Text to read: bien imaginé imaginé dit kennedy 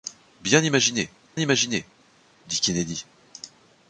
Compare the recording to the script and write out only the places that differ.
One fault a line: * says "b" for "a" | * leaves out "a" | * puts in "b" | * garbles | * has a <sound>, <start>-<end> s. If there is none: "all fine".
all fine